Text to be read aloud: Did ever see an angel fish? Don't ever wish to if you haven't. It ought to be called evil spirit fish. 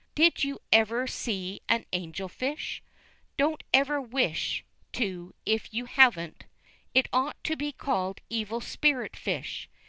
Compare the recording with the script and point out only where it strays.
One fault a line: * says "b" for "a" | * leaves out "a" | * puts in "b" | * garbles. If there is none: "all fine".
* puts in "you"